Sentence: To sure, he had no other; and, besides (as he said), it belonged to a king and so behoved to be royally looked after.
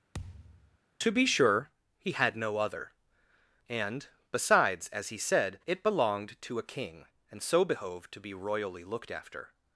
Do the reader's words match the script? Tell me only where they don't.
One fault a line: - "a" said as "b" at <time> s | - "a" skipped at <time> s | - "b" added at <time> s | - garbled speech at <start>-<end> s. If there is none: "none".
- "be" added at 1.1 s